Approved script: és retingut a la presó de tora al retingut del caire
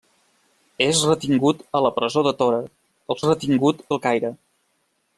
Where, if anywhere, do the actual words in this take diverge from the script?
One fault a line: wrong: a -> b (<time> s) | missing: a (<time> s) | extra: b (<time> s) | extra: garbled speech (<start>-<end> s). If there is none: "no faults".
no faults